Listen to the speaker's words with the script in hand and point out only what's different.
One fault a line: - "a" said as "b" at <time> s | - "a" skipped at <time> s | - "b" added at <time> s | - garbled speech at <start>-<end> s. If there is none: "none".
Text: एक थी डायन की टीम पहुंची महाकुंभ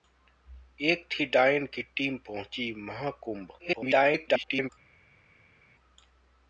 - garbled speech at 3.6-4.7 s